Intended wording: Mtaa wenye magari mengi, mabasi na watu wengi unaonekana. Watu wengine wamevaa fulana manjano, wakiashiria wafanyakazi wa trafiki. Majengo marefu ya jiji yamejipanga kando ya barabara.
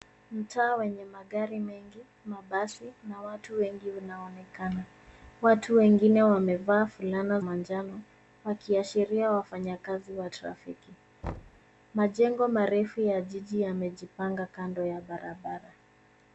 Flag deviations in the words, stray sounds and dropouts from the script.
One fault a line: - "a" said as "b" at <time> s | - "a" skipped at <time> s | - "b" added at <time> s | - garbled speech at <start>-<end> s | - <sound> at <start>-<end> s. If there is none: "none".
- thud at 11.2-11.6 s